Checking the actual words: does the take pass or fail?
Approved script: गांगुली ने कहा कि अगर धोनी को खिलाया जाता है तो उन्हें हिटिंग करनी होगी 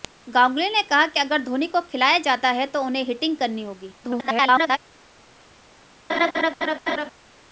fail